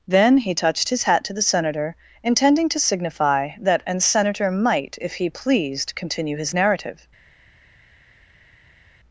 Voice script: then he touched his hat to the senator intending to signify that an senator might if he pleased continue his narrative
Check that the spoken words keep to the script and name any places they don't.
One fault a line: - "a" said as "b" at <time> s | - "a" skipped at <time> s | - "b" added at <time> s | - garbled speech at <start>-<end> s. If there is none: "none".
none